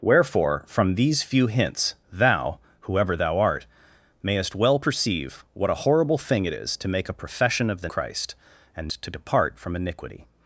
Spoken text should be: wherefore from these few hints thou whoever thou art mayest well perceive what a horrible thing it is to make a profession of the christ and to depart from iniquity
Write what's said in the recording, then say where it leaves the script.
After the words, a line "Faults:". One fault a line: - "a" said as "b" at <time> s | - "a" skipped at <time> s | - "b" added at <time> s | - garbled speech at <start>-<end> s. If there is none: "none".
wherefore from these few hints thou whoever thou art mayest well perceive what a horrible thing it is to make a profession of the christ and to depart from iniquity
Faults:
none